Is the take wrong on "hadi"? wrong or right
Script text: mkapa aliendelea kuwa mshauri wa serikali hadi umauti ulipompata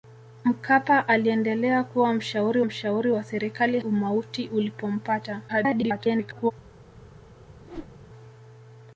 wrong